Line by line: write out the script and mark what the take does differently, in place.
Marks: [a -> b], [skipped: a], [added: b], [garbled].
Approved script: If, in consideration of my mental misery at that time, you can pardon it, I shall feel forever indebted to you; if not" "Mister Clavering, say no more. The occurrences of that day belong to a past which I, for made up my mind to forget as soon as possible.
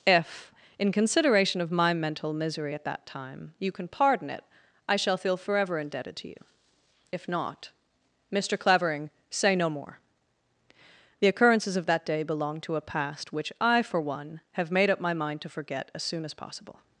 If, in consideration of my mental misery at that time, you can pardon it, I shall feel forever indebted to you; if not" "Mister Clavering, say no more. The occurrences of that day belong to a past which I, for [added: one have] made up my mind to forget as soon as possible.